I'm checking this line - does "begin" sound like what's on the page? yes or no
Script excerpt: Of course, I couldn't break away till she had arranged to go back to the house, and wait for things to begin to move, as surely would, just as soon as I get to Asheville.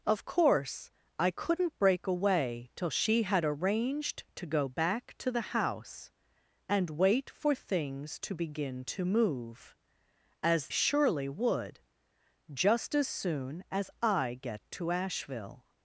yes